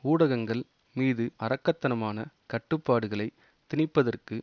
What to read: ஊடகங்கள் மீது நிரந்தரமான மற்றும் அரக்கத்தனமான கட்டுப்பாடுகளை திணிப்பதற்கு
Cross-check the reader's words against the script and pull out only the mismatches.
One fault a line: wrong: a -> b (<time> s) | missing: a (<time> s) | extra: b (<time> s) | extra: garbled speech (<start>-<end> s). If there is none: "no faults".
missing: நிரந்தரமான மற்றும் (1.2 s)